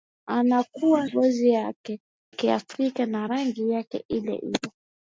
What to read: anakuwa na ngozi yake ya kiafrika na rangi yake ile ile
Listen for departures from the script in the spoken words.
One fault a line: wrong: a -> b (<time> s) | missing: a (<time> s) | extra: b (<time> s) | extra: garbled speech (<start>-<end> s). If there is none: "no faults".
missing: na (1.1 s)
missing: ya (2.0 s)